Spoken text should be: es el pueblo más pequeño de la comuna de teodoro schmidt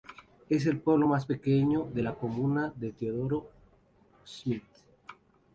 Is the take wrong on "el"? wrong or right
right